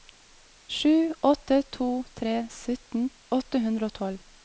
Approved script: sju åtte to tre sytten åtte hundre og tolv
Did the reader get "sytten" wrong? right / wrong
right